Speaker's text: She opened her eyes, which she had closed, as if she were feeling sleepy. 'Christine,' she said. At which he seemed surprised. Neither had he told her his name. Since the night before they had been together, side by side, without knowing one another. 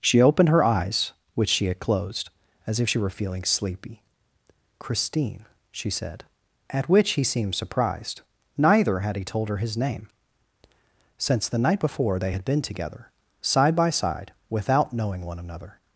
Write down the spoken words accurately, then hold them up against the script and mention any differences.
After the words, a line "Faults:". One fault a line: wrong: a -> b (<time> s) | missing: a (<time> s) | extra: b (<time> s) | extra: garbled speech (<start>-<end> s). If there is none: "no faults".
She opened her eyes, which she had closed, as if she were feeling sleepy. 'Christine,' she said. At which he seemed surprised. Neither had he told her his name. Since the night before they had been together, side by side, without knowing one another.
Faults:
no faults